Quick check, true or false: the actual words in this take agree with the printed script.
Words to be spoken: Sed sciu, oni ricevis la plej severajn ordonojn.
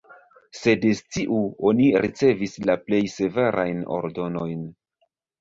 true